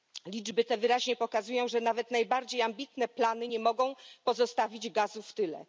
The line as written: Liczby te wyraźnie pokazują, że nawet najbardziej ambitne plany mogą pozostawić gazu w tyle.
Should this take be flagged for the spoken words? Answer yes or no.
yes